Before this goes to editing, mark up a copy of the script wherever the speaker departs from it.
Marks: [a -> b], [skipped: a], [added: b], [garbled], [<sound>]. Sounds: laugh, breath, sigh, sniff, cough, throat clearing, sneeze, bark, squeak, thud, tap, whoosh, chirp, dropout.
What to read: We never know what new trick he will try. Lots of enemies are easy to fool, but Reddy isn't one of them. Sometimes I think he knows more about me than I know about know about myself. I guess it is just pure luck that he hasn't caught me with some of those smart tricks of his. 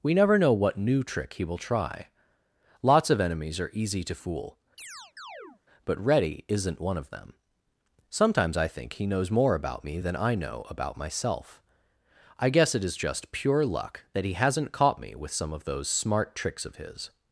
We never know what new trick he will try. Lots of enemies are easy to fool, [chirp] but Reddy isn't one of them. Sometimes I think he knows more about me than I know about [skipped: know about] myself. I guess it is just pure luck that he hasn't caught me with some of those smart tricks of his.